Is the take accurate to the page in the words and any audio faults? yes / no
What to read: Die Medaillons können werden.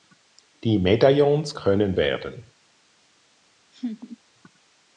no